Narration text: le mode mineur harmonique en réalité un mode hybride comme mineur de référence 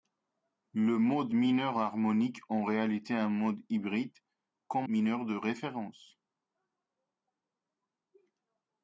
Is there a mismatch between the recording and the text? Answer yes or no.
no